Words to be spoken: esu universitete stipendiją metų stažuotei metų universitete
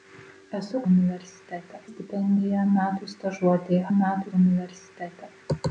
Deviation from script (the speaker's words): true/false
false